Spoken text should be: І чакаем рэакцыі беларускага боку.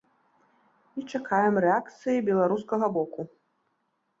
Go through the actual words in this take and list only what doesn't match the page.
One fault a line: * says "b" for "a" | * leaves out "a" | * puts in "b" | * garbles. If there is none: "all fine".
all fine